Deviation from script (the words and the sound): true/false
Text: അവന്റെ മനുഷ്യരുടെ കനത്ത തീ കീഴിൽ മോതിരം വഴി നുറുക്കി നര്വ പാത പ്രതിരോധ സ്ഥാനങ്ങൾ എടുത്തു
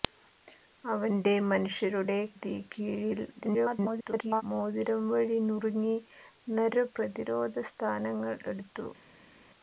true